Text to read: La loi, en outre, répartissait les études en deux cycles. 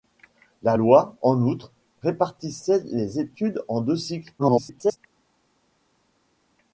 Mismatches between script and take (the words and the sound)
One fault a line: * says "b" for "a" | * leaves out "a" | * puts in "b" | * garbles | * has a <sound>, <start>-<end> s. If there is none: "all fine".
* garbles